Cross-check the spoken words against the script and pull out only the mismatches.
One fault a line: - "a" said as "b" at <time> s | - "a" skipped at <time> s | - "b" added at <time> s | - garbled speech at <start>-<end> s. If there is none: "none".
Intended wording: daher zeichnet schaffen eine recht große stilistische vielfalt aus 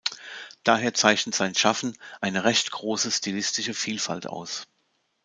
- "sein" added at 1.3 s